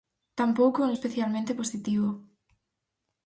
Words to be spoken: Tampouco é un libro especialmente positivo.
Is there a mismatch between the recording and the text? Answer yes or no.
yes